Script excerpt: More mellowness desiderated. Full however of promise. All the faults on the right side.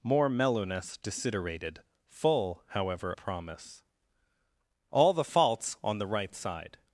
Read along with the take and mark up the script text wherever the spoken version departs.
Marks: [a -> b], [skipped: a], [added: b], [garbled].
More mellowness desiderated. Full however [skipped: of] promise. All the faults on the right side.